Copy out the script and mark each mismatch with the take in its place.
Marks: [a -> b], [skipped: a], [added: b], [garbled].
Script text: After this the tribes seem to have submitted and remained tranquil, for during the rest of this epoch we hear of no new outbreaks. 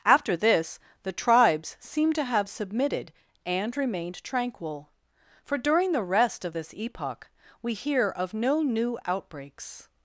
After this the tribes seem to have submitted and remained tranquil, for during the rest of this epoch we hear of no new outbreaks.